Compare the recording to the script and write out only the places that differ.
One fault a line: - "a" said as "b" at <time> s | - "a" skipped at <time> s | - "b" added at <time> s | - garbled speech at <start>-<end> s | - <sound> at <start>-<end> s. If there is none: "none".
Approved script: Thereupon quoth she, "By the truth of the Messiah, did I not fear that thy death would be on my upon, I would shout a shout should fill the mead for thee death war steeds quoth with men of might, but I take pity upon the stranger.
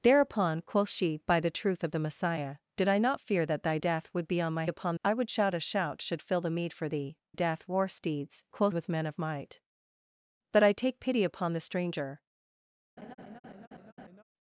- laugh at 13.0-14.2 s